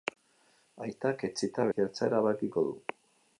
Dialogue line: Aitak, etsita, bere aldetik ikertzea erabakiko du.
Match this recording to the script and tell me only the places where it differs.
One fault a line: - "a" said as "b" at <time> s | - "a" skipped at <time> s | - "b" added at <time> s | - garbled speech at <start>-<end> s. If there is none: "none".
- "bere aldetik" skipped at 1.7 s